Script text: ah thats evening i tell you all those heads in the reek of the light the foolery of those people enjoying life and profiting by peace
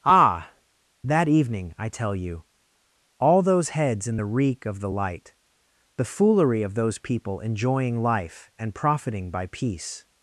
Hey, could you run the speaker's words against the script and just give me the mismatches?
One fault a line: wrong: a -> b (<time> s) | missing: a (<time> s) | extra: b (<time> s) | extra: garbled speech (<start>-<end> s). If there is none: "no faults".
wrong: thats -> that (1.0 s)